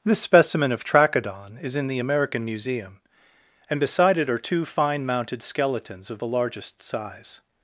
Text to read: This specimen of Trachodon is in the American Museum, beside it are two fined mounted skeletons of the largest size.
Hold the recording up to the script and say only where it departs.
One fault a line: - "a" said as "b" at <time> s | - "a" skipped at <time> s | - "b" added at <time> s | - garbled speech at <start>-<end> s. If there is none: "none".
- "and" added at 3.7 s
- "fined" said as "fine" at 4.7 s